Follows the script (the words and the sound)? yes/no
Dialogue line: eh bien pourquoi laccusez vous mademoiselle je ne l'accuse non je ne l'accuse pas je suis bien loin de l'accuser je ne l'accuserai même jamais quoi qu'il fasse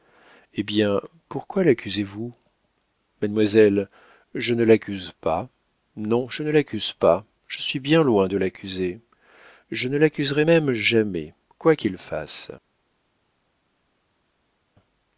no